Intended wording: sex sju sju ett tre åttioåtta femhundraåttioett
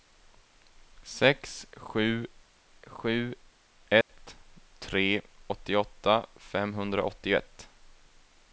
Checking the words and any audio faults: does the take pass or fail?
fail